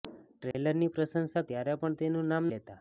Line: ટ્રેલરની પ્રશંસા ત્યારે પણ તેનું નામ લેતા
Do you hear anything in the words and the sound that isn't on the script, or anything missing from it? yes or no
yes